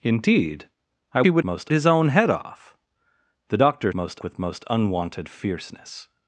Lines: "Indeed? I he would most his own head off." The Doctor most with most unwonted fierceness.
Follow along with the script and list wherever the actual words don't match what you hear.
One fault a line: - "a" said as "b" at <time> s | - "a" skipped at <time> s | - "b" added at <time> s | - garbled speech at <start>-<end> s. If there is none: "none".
none